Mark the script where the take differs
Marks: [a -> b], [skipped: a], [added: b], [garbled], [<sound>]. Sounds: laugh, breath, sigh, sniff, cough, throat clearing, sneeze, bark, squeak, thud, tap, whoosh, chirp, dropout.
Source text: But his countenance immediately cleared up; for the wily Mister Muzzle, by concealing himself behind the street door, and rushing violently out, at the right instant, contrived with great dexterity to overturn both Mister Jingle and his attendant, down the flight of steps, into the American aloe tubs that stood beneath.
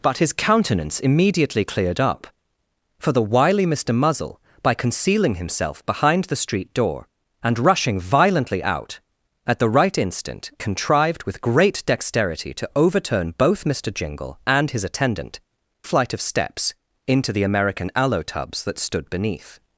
But his countenance immediately cleared up; for the wily Mister Muzzle, by concealing himself behind the street door, and rushing violently out, at the right instant, contrived with great dexterity to overturn both Mister Jingle and his attendant, [skipped: down the] flight of steps, into the American aloe tubs that stood beneath.